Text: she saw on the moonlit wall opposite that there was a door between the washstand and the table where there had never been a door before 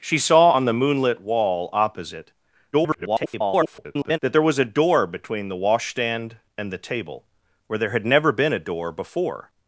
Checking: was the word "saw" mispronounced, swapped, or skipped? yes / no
no